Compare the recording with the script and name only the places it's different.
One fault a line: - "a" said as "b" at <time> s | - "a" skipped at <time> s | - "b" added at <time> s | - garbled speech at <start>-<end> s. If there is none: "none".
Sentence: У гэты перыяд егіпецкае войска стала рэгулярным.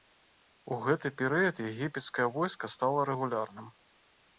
none